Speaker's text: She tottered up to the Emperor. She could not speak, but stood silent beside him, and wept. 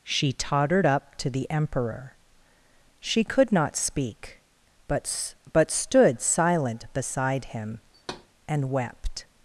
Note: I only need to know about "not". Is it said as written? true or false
true